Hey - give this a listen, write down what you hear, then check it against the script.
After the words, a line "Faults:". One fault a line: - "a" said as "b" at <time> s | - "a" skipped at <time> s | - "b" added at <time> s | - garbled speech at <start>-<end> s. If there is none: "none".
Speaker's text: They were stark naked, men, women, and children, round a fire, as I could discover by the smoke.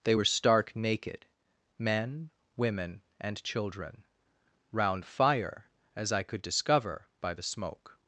They were stark naked, men, women, and children, round fire, as I could discover by the smoke.
Faults:
- "a" skipped at 5.0 s